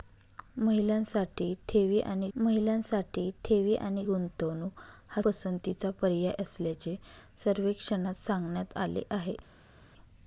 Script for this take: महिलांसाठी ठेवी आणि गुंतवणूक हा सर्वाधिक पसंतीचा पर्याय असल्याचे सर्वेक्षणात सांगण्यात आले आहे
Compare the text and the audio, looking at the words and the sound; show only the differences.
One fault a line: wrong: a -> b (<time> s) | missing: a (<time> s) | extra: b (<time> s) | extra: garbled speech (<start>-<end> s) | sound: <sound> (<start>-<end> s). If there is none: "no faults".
extra: महिलांसाठी ठेवी आणि (2.4 s)
missing: सर्वाधिक (5.2 s)